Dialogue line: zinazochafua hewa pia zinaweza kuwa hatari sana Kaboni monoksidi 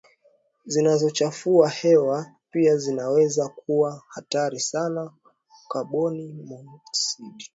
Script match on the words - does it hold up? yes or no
yes